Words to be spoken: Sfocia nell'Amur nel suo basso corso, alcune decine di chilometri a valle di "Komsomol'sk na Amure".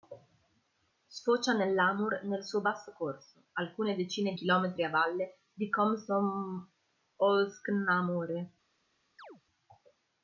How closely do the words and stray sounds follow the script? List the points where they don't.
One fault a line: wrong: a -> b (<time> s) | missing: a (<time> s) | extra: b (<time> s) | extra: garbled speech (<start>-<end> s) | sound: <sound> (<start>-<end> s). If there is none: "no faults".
missing: di (4.3 s)
sound: chirp (9.2-9.4 s)